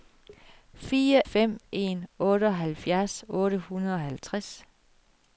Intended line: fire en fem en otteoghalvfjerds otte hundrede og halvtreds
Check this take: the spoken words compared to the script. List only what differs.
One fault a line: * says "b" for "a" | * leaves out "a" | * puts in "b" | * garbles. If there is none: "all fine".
* leaves out "en"